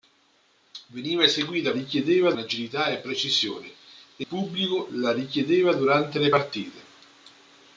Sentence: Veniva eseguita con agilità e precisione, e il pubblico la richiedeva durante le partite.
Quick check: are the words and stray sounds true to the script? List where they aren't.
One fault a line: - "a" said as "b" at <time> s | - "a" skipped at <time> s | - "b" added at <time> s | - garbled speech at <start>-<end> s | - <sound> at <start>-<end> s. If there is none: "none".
- "con" said as "richiedeva" at 1.7 s
- "il" skipped at 4.3 s